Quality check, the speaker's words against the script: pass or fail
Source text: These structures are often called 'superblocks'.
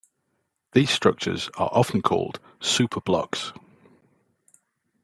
pass